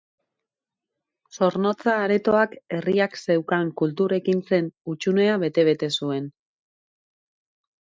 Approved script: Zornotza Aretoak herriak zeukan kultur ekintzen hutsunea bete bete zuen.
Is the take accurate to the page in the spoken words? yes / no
yes